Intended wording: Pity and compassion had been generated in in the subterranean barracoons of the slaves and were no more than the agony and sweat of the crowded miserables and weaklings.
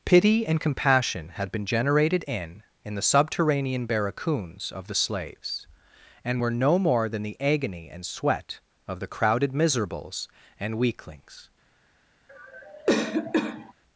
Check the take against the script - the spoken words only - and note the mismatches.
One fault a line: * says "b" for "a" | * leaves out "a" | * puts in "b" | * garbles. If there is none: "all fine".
all fine